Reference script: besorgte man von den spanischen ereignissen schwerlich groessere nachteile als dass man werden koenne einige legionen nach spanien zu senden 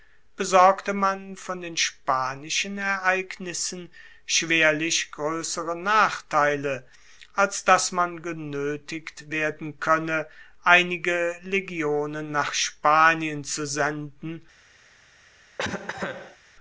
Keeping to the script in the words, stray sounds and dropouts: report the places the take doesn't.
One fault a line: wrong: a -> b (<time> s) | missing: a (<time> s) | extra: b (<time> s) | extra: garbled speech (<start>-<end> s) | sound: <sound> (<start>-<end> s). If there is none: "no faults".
extra: genoetigt (8.2 s)
sound: cough (15.6-16.4 s)